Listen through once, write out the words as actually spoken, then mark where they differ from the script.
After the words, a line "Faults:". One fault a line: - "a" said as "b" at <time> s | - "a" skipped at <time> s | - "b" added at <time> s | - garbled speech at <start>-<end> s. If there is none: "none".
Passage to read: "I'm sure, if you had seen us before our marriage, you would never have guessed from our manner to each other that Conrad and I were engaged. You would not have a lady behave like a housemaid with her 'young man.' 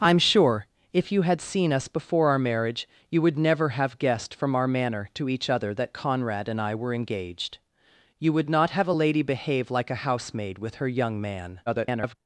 "I'm sure, if you had seen us before our marriage, you would never have guessed from our manner to each other that Conrad and I were engaged. You would not have a lady behave like a housemaid with her 'young man.' [garbled]
Faults:
- garbled speech at 11.7-12.2 s